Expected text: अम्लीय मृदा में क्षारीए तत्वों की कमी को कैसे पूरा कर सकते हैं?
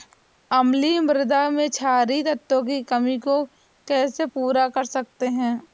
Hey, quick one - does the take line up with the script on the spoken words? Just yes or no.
yes